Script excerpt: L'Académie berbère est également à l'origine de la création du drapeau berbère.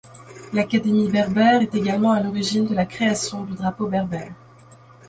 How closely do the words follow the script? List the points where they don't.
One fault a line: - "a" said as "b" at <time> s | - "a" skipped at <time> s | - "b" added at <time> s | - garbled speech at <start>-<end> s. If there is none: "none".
none